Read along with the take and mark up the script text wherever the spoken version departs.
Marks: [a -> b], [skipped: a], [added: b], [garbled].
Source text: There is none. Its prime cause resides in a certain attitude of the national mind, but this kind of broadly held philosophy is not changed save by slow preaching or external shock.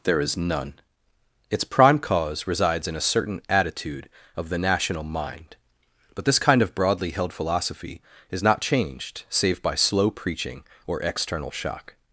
There is none. Its prime cause resides in a certain attitude of the national mind, but this kind of broadly held philosophy is not changed save by slow preaching or external shock.